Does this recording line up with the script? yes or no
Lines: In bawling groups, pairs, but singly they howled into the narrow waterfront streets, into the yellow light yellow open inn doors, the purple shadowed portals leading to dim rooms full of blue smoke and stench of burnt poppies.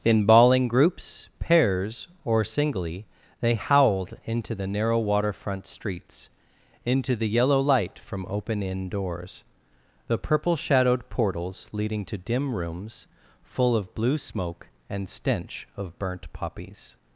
no